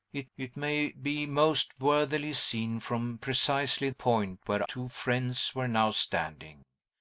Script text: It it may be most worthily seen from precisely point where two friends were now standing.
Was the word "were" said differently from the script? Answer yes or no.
no